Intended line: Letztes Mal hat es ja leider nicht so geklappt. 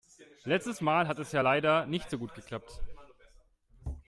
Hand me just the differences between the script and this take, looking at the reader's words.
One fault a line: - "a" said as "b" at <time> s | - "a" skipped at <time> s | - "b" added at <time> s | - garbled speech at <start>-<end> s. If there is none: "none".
- "gut" added at 2.2 s